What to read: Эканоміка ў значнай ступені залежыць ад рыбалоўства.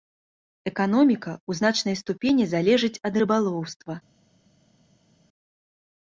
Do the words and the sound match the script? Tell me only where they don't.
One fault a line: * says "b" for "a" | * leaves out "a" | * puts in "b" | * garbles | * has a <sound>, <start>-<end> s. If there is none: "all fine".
all fine